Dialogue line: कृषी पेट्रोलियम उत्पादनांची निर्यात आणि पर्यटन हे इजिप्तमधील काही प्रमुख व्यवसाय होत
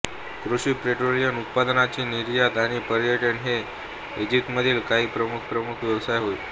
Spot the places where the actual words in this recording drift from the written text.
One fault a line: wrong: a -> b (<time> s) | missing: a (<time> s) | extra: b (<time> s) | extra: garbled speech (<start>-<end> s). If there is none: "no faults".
extra: प्रमुख (5.4 s)